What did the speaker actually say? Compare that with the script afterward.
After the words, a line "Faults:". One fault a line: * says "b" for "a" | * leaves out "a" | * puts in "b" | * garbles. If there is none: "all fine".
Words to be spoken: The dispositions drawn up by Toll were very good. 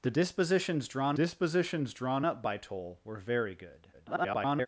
The dispositions drawn dispositions drawn up by Toll were very good. [garbled]
Faults:
* puts in "dispositions drawn"
* garbles